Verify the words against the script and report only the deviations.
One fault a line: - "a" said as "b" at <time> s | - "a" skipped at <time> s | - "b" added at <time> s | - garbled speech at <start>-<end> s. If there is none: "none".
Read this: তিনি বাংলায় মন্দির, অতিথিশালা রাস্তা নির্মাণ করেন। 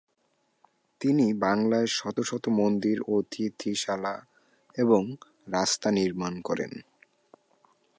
- "শত শত" added at 1.9 s
- "এবং" added at 4.8 s